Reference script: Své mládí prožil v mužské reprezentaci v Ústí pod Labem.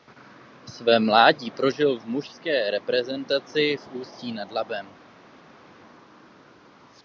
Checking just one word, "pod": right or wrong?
wrong